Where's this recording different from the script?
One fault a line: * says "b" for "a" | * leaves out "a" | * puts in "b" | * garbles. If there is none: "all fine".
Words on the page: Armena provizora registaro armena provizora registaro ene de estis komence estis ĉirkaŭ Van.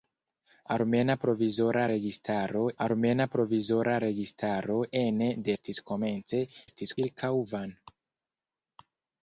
all fine